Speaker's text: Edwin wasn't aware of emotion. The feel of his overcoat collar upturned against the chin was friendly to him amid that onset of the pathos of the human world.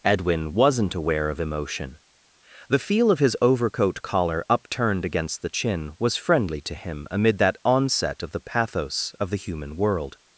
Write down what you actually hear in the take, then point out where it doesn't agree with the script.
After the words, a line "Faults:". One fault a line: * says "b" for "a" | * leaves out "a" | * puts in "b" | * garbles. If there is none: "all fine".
Edwin wasn't aware of emotion. The feel of his overcoat collar upturned against the chin was friendly to him amid that onset of the pathos of the human world.
Faults:
all fine